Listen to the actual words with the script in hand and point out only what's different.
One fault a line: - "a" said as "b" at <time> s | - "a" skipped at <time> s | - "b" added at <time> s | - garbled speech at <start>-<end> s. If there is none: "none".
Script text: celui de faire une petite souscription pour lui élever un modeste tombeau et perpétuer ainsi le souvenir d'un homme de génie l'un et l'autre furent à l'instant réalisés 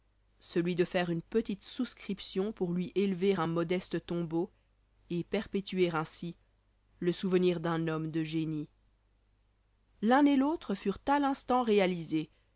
none